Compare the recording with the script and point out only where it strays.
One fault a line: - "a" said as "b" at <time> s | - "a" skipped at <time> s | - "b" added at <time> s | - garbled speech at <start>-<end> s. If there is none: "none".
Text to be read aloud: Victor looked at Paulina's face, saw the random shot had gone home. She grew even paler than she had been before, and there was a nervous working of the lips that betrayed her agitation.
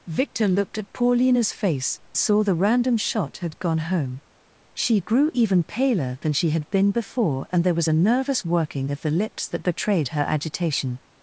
none